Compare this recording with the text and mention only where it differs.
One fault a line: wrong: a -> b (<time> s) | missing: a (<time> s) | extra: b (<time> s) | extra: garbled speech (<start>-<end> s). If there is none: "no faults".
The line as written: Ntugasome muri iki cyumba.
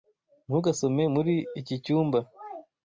no faults